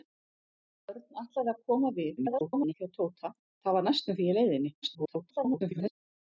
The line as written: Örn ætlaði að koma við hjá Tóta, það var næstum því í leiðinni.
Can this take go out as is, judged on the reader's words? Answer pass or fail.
fail